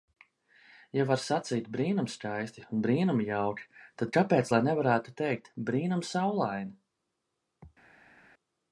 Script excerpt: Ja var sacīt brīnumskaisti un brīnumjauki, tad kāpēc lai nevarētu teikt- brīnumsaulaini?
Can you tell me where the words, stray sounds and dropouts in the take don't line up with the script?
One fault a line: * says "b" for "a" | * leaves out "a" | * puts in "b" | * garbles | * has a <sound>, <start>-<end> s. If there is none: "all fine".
all fine